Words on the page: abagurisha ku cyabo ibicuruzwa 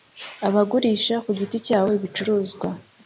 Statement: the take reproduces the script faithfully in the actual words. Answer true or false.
false